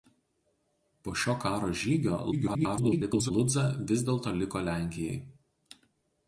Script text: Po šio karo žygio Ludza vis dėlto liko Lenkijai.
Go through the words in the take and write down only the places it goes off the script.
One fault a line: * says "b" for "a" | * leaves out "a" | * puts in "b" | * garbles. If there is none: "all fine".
* garbles